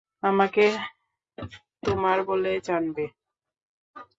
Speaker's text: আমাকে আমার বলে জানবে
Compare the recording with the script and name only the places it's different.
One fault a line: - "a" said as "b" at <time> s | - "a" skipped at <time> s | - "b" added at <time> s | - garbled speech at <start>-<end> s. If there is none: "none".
- "আমার" said as "তোমার" at 1.8 s